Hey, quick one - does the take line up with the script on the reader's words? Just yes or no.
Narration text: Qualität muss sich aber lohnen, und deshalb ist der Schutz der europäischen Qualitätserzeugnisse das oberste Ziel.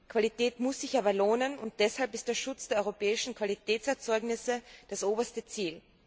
yes